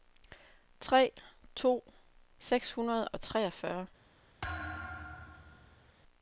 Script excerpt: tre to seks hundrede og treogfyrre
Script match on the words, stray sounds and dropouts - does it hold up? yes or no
no